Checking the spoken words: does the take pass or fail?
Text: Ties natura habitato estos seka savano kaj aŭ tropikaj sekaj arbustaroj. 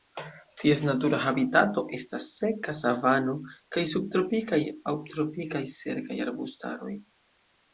fail